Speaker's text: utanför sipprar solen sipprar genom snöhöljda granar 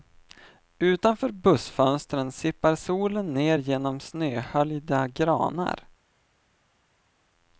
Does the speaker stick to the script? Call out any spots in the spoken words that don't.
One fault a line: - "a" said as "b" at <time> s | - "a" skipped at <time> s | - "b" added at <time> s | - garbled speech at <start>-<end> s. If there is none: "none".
- "bussfönstren" added at 1.3 s
- "sipprar" said as "ner" at 3.3 s